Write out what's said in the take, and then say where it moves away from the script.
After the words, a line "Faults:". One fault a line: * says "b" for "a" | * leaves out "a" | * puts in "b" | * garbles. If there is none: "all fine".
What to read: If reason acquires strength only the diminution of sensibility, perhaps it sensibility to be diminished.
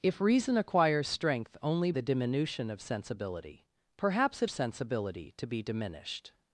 If reason acquires strength only the diminution of sensibility, perhaps it sensibility to be diminished.
Faults:
all fine